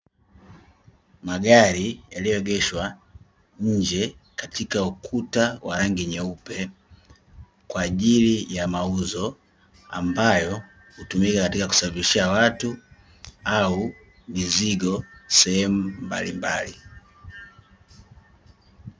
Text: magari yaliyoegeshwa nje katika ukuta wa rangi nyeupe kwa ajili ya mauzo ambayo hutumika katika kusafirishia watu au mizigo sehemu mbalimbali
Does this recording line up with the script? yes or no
yes